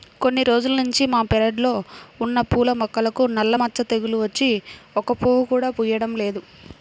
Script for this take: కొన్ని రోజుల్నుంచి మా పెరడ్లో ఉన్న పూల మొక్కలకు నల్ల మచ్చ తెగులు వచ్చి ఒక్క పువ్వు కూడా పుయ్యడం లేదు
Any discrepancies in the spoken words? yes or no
no